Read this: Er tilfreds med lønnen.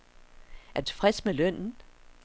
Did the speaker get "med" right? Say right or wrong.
right